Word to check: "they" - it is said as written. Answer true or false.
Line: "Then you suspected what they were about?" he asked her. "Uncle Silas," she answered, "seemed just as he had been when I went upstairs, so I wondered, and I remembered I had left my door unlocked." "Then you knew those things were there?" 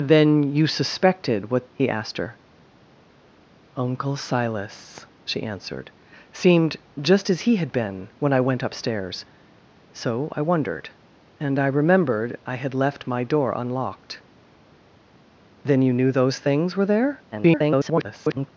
false